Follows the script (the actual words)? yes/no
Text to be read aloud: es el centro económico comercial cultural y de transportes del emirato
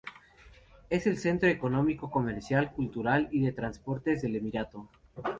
yes